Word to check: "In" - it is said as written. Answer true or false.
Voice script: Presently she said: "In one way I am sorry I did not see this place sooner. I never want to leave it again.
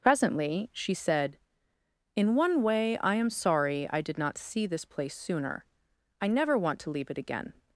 true